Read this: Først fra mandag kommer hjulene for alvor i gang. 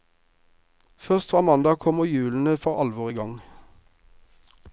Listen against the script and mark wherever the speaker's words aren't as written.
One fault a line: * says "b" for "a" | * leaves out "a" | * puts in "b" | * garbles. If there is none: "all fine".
all fine